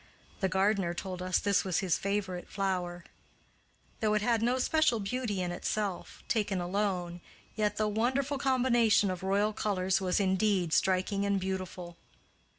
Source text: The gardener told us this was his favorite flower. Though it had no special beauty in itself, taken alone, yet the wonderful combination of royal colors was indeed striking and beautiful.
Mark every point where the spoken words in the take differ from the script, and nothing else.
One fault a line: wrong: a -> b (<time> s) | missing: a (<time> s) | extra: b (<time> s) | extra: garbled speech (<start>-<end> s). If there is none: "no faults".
no faults